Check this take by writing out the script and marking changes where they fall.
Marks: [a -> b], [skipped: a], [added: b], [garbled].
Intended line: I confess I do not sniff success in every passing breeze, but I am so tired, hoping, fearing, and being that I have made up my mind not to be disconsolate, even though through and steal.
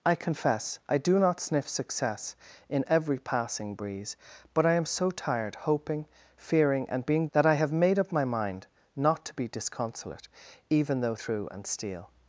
I confess I do not sniff success in every passing breeze, but I am so tired, hoping, fearing, and being that I have made up my mind not to be disconsolate, even though through and steal.